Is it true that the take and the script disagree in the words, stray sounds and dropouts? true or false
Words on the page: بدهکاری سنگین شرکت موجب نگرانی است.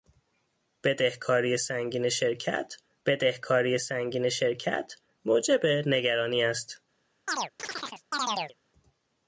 true